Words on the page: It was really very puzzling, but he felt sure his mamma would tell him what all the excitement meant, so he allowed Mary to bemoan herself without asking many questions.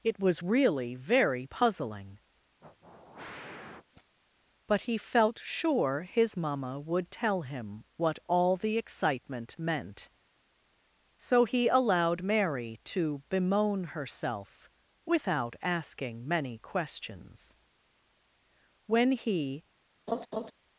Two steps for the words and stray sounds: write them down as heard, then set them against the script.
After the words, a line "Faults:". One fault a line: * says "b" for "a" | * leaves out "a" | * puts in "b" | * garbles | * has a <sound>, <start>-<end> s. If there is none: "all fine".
It was really very puzzling, but he felt sure his mamma would tell him what all the excitement meant, so he allowed Mary to bemoan herself without asking many questions. When he
Faults:
* has a sniff, 2.6-4.2 s
* puts in "When he"
* has a laugh, 20.1-20.5 s